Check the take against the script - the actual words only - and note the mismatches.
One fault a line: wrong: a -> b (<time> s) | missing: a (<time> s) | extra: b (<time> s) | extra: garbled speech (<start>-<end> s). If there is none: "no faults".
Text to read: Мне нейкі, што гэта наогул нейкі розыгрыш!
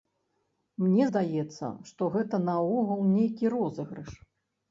wrong: нейкі -> здаецца (1.1 s)